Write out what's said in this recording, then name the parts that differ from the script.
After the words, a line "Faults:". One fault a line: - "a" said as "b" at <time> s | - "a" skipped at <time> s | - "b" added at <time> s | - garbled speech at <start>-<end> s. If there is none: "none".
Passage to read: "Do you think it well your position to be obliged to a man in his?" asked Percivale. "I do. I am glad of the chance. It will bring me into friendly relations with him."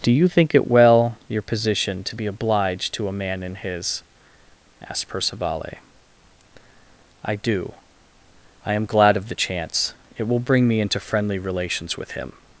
"Do you think it well your position to be obliged to a man in his?" asked Percivale. "I do. I am glad of the chance. It will bring me into friendly relations with him."
Faults:
none